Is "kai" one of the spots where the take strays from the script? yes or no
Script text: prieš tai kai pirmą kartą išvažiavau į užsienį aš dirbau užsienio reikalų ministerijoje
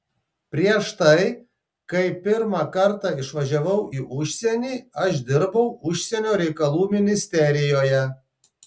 no